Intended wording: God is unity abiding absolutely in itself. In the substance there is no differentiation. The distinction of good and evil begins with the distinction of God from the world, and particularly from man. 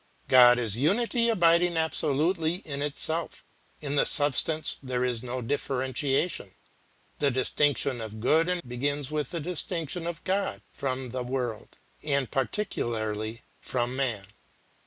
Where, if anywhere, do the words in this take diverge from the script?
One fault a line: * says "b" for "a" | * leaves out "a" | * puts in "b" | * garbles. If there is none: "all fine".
* leaves out "evil"